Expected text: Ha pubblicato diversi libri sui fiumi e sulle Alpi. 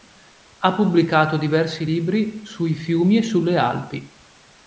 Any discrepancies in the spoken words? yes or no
no